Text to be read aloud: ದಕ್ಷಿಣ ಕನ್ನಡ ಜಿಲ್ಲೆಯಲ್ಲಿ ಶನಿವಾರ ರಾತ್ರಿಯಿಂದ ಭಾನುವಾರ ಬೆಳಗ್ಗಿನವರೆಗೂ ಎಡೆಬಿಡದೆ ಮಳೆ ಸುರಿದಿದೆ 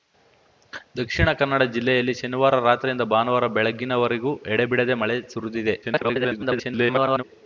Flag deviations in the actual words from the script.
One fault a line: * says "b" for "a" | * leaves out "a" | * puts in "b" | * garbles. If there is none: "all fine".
* garbles